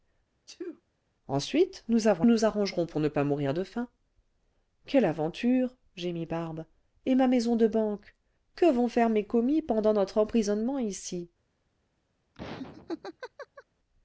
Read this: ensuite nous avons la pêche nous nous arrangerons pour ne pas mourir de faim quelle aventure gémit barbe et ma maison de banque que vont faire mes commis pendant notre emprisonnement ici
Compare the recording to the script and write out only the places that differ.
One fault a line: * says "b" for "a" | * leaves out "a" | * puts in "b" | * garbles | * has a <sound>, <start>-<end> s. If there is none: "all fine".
* has a sneeze, 0.5-0.8 s
* leaves out "la pêche nous"
* has a laugh, 12.3-13.6 s